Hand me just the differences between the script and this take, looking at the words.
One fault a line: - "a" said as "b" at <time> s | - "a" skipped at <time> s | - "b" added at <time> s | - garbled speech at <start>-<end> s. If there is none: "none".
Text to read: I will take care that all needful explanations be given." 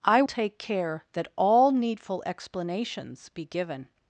- "will" skipped at 0.2 s